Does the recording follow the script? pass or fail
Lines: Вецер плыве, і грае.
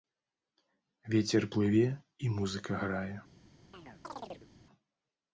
fail